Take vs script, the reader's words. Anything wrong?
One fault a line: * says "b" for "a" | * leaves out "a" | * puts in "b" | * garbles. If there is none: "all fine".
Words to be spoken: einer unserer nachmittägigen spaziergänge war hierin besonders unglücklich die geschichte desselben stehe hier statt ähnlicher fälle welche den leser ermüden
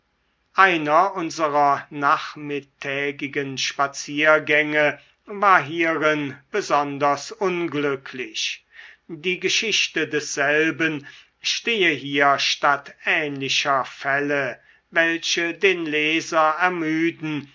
all fine